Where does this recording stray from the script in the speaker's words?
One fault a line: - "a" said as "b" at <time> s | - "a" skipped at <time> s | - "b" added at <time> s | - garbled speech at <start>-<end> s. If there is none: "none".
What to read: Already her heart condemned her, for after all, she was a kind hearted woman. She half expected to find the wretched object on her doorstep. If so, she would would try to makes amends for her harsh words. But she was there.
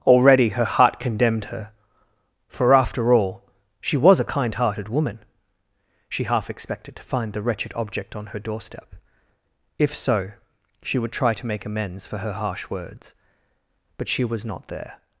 - "would" skipped at 11.1 s
- "makes" said as "make" at 11.4 s
- "not" added at 14.4 s